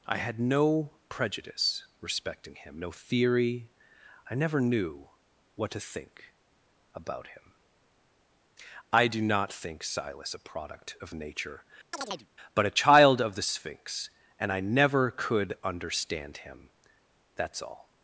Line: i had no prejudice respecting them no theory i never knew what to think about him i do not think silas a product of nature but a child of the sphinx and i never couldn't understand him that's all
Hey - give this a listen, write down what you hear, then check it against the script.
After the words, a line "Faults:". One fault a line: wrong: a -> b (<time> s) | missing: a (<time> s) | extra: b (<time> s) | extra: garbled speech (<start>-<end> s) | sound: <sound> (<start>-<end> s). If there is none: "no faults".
i had no prejudice respecting him no theory i never knew what to think about him i do not think silas a product of nature but a child of the sphinx and i never could understand him that's all
Faults:
wrong: them -> him (2.5 s)
sound: chirp (11.9-12.3 s)
wrong: couldn't -> could (15.1 s)